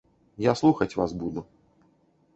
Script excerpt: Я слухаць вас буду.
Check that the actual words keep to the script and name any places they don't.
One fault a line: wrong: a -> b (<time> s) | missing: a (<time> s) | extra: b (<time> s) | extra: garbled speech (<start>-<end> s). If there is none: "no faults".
no faults